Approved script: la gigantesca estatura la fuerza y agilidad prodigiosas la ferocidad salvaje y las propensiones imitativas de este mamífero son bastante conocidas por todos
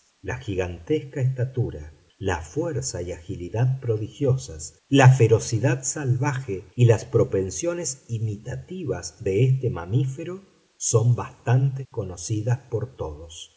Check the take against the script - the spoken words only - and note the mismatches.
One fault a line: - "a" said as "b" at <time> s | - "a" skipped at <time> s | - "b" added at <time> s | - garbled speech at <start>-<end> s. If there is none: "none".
none